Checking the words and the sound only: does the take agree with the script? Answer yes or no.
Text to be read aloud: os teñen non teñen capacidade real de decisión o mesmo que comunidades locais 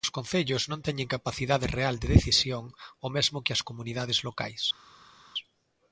no